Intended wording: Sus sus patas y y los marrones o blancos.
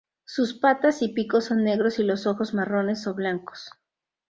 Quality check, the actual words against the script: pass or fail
fail